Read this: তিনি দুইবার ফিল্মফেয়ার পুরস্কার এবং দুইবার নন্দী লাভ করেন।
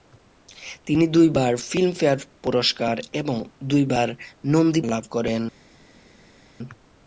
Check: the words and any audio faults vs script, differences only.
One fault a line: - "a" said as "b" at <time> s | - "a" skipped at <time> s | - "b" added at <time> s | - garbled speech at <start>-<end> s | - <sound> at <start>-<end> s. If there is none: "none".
none